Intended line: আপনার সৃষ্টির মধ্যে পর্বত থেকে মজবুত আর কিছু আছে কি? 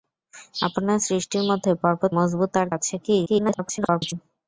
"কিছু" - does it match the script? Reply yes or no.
no